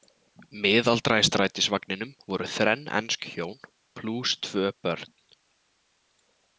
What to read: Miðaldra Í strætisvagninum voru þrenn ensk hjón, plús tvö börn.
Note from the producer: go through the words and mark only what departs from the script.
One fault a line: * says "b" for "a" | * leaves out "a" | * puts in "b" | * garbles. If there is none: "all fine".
all fine